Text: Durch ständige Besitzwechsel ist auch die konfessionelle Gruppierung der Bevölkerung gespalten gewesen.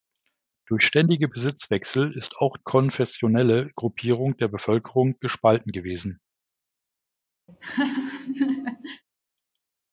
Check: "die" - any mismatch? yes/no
yes